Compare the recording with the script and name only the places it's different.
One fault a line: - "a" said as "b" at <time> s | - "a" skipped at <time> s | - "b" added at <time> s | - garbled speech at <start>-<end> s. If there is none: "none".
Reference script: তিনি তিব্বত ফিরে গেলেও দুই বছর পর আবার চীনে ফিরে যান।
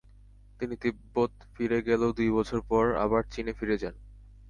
none